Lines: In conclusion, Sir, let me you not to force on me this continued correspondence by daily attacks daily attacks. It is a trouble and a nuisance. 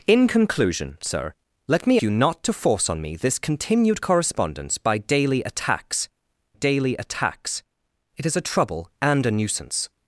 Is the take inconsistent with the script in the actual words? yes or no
no